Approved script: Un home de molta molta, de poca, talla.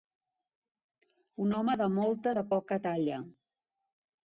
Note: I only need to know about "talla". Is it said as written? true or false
true